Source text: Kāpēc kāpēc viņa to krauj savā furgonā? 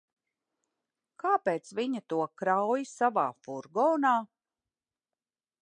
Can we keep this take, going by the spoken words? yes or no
no